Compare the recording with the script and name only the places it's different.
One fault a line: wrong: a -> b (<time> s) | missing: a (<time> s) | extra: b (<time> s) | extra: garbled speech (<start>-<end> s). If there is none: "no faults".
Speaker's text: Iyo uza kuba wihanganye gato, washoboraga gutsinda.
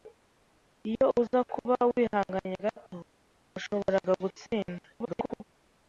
extra: garbled speech (4.9-5.4 s)